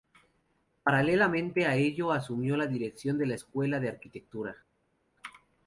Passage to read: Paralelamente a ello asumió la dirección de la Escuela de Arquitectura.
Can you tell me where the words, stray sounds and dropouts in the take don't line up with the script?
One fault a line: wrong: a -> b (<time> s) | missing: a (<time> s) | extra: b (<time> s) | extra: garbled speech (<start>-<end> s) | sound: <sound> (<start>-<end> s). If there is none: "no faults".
no faults